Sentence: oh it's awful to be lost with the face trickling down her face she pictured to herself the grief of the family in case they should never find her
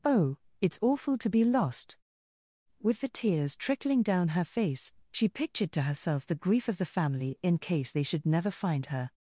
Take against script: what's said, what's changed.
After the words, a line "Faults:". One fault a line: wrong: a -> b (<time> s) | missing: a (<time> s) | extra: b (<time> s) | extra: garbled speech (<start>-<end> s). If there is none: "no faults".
oh it's awful to be lost with the tears trickling down her face she pictured to herself the grief of the family in case they should never find her
Faults:
wrong: face -> tears (3.1 s)